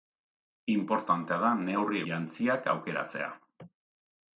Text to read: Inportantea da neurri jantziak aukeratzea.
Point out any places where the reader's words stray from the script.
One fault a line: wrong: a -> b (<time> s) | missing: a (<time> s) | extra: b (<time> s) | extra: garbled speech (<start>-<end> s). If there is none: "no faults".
no faults